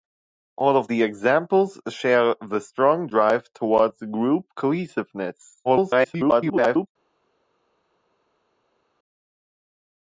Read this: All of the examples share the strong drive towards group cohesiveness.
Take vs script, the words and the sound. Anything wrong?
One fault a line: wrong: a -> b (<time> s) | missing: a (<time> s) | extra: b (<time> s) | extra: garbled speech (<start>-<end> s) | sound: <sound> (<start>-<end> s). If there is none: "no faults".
extra: garbled speech (5.6-6.9 s)